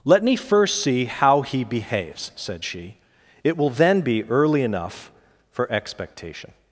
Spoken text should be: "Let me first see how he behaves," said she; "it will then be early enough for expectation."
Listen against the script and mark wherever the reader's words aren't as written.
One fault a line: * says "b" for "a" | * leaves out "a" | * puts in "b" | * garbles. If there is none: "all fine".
all fine